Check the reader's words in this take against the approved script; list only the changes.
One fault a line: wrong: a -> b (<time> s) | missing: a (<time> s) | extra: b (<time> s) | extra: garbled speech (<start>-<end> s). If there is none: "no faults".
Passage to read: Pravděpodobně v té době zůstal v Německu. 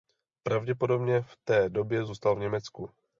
no faults